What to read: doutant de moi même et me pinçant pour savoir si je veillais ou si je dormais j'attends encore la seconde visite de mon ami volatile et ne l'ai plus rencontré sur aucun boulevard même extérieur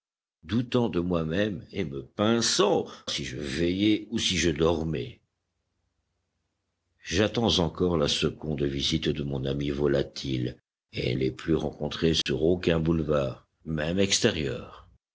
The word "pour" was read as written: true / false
false